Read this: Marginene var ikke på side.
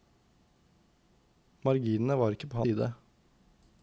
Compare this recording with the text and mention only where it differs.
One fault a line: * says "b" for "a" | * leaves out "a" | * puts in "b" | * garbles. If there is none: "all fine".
all fine